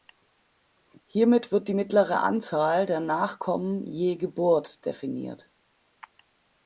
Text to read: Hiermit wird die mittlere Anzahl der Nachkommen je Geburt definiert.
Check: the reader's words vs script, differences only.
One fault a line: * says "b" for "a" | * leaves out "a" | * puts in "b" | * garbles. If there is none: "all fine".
all fine